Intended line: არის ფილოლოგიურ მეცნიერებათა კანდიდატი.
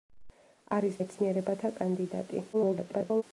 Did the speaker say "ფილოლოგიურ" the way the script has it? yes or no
no